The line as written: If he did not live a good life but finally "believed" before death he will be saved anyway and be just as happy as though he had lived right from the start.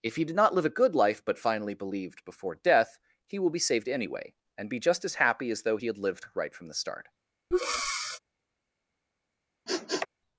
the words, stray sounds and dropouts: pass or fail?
fail